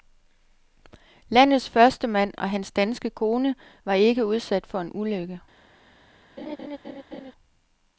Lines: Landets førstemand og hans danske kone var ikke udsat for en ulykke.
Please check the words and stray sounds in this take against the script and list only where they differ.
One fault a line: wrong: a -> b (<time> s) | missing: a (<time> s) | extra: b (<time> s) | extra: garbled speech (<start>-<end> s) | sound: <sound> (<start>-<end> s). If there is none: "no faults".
sound: laugh (6.4-7.3 s)